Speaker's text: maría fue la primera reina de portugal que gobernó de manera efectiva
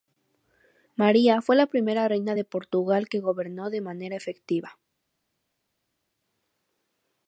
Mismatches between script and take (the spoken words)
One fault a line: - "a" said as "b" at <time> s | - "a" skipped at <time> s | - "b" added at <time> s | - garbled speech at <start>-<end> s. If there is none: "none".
none